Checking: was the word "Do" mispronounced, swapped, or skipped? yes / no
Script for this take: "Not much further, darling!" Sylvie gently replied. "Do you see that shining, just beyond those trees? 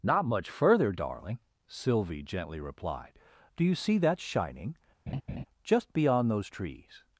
no